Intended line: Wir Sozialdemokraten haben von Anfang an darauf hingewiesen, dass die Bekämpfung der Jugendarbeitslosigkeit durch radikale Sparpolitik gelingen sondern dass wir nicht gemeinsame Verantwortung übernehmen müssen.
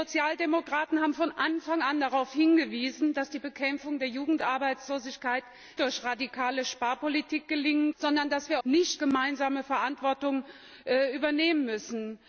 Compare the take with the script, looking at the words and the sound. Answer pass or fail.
pass